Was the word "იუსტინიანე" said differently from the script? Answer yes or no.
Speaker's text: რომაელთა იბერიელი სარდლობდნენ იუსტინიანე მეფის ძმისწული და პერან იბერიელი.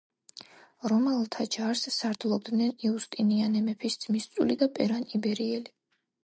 no